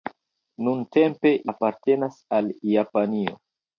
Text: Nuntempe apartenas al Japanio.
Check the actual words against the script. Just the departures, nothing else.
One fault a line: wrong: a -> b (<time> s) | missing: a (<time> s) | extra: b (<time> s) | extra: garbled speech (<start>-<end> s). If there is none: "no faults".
no faults